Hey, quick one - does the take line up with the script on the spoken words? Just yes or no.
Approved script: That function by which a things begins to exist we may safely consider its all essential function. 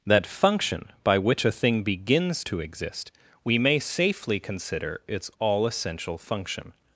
no